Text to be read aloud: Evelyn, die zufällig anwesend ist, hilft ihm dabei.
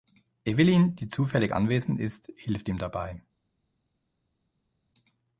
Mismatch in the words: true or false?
false